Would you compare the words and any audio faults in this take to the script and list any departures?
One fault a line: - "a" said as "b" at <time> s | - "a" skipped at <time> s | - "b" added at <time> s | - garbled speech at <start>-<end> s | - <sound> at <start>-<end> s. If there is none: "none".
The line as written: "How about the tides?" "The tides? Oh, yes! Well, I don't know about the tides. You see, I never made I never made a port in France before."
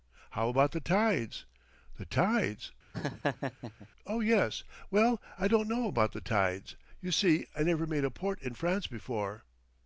- laugh at 2.9-3.9 s
- "I never made" skipped at 8.0 s